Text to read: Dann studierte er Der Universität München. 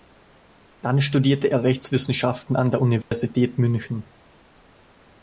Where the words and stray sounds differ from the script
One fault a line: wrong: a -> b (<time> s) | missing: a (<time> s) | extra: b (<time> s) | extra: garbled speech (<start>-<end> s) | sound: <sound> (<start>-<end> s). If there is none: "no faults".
extra: Rechtswissenschaften an (1.6 s)
sound: dropout (3.0-3.1 s)